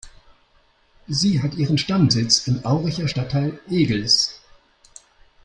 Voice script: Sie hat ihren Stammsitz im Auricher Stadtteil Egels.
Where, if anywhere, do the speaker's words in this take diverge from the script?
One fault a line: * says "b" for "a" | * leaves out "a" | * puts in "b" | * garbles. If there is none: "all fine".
all fine